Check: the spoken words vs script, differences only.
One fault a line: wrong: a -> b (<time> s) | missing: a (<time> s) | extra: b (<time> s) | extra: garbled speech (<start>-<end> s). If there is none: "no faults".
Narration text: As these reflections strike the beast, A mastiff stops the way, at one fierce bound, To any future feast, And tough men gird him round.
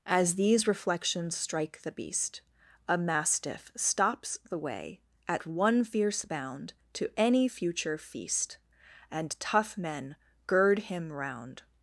no faults